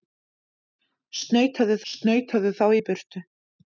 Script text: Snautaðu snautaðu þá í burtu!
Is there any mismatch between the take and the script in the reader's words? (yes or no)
no